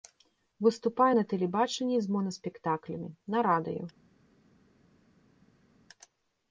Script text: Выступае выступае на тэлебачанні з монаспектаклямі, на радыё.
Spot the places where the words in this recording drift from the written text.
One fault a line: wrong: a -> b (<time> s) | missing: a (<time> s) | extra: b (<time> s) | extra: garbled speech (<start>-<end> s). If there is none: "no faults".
missing: выступае (1.1 s)